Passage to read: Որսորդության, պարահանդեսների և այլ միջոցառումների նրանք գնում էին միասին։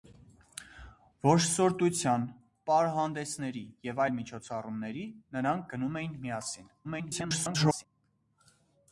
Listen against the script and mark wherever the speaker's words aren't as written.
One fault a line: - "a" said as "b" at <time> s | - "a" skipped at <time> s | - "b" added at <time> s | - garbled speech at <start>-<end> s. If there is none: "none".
- garbled speech at 6.8-7.9 s